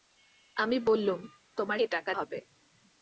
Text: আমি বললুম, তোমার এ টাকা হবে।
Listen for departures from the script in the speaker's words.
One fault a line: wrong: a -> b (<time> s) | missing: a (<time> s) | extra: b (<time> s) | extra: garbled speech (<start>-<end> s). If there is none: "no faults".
no faults